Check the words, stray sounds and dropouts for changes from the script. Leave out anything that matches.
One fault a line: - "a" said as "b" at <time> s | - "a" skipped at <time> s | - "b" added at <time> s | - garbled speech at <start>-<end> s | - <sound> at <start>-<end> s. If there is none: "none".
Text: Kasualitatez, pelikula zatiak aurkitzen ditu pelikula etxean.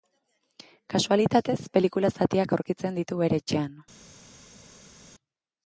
- "pelikula" said as "bere" at 3.2 s